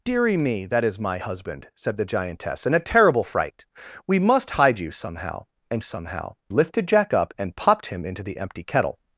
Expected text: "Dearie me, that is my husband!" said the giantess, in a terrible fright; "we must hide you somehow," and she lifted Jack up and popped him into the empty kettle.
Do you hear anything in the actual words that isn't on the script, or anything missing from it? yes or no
yes